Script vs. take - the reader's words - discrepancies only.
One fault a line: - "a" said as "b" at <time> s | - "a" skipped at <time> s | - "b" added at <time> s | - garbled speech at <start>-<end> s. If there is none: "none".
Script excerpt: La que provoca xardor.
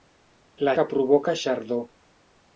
none